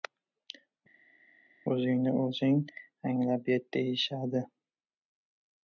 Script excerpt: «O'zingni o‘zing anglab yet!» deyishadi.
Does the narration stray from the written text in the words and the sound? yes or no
no